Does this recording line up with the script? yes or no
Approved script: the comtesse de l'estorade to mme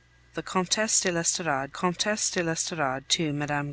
no